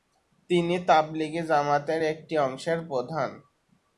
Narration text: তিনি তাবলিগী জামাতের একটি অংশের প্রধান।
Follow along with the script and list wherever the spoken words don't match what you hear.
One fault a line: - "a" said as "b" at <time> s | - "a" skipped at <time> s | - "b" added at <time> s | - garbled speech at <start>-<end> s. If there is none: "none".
none